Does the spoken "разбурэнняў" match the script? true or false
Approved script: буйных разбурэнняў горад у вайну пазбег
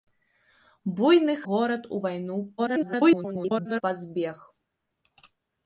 false